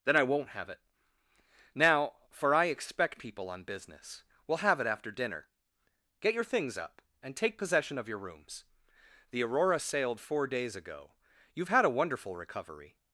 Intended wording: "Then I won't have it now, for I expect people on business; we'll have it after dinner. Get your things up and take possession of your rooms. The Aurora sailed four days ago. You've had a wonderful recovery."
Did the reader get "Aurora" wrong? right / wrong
right